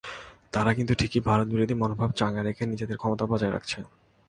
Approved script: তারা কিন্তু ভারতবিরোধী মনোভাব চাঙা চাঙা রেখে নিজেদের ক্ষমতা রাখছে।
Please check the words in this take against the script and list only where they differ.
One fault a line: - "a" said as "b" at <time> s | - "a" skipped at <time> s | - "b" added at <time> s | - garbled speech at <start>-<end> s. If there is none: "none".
- "ঠিকই" added at 0.9 s
- "চাঙা" skipped at 2.4 s
- "বজায়" added at 3.3 s